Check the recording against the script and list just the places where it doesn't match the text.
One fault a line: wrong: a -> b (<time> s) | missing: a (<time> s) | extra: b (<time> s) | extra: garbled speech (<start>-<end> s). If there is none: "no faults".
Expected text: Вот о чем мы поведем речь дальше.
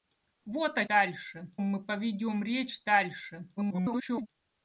wrong: чем -> дальше (0.9 s)
extra: garbled speech (3.6-4.3 s)